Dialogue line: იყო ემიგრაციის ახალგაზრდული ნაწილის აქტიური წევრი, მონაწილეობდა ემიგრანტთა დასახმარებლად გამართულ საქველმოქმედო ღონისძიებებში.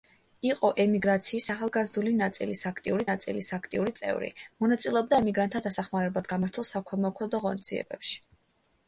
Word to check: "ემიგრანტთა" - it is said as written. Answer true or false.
true